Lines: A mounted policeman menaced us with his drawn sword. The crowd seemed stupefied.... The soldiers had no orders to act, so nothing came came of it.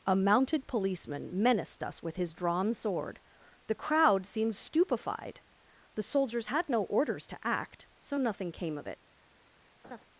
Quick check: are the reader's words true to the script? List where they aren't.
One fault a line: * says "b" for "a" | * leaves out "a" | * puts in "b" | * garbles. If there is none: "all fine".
* leaves out "came"